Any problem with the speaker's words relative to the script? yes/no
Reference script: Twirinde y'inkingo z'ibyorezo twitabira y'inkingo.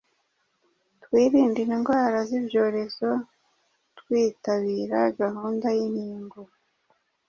yes